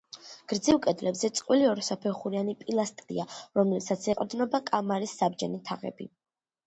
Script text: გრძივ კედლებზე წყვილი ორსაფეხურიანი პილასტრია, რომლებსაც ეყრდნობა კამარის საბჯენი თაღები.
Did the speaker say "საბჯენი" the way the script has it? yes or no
yes